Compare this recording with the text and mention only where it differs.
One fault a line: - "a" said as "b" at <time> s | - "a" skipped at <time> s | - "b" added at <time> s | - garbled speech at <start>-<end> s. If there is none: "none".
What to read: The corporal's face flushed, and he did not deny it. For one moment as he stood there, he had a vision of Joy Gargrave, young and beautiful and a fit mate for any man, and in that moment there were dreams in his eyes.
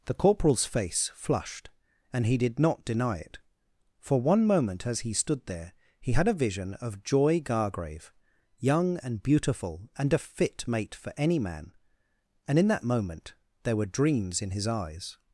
none